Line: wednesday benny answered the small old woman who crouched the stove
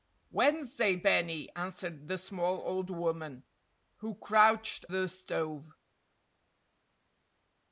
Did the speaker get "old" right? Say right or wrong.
right